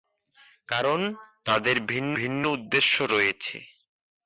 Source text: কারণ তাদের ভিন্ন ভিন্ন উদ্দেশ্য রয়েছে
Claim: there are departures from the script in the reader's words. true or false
false